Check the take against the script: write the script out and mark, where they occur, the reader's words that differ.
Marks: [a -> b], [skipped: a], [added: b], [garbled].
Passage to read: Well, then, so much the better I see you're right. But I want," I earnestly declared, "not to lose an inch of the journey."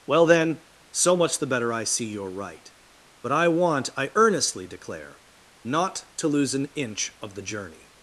Well, then, so much the better I see you're right. But I want," I earnestly [declared, -> declare] "not to lose an inch of the journey."